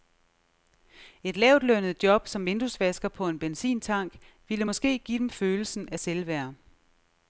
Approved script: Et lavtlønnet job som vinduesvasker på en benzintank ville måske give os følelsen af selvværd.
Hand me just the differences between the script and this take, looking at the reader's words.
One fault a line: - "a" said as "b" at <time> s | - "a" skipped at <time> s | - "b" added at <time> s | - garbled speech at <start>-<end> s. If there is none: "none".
- "os" said as "dem" at 5.2 s